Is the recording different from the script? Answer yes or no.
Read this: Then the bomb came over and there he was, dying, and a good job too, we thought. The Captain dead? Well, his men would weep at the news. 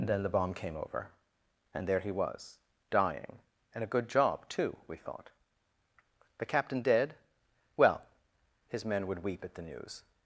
no